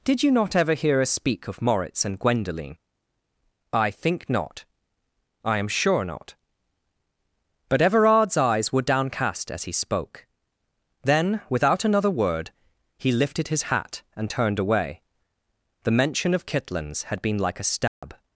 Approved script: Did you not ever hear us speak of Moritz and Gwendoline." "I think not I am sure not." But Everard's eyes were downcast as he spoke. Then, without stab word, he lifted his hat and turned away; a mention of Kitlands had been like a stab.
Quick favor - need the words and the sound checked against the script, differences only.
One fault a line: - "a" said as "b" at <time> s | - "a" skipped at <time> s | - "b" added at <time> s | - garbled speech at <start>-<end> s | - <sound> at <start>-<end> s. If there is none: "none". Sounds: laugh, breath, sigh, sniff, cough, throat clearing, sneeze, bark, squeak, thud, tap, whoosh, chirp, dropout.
- "stab" said as "another" at 11.8 s
- "a" said as "the" at 15.8 s
- dropout at 17.9-18.0 s